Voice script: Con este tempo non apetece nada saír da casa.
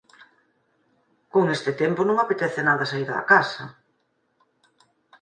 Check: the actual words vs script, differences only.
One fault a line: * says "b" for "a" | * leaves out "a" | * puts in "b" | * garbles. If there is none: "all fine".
all fine